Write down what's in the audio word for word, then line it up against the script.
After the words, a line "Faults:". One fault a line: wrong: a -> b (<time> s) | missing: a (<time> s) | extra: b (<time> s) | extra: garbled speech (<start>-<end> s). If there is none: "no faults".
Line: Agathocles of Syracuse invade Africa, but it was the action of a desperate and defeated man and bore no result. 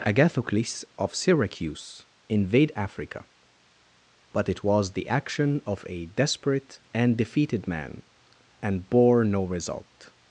Agathocles of Syracuse invade Africa, but it was the action of a desperate and defeated man and bore no result.
Faults:
no faults